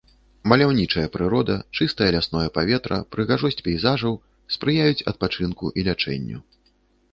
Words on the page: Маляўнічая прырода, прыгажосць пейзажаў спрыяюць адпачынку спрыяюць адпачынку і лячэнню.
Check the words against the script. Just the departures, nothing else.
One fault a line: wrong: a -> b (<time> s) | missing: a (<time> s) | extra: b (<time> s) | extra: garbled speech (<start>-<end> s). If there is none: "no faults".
extra: чыстае лясное паветра (1.8 s)
missing: спрыяюць адпачынку (5.7 s)